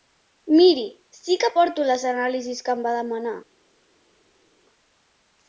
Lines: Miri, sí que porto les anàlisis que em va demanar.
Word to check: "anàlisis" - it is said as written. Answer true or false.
true